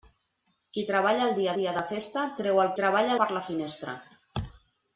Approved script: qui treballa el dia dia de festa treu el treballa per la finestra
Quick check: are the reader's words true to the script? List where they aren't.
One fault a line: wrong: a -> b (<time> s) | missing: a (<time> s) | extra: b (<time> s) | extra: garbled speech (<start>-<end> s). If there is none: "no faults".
no faults